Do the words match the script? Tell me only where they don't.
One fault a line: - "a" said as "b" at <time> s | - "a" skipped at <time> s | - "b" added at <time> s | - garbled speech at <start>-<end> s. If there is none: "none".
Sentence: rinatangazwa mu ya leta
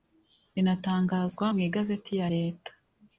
- "igazeti" added at 1.7 s